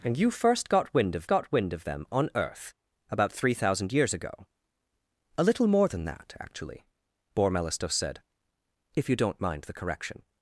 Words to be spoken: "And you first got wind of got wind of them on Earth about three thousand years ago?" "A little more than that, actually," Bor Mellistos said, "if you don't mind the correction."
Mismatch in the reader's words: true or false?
false